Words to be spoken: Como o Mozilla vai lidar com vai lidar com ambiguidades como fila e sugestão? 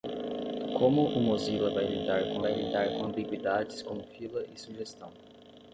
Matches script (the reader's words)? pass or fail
pass